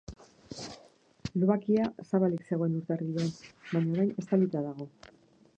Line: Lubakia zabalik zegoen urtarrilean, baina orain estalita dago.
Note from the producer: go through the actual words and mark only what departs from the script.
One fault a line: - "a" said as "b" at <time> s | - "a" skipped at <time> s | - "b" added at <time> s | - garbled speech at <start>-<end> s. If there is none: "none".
none